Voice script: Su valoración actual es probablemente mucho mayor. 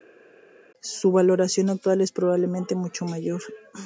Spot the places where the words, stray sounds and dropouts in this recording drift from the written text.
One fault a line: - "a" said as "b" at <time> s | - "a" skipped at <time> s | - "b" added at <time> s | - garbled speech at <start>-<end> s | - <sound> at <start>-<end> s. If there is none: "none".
none